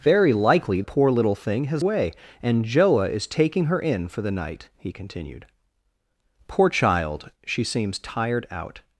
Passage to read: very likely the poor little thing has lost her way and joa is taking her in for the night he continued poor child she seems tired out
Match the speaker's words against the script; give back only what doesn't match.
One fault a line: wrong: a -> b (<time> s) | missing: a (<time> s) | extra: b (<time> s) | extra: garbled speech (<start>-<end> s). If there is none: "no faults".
missing: the (0.8 s)
missing: lost her (1.8 s)